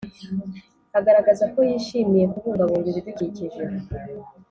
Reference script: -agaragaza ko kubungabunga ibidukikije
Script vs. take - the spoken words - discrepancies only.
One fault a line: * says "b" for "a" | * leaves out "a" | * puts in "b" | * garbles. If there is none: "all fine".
* puts in "yishimiye"